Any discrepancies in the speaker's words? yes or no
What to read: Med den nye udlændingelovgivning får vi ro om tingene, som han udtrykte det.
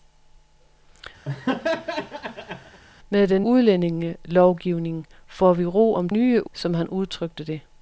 yes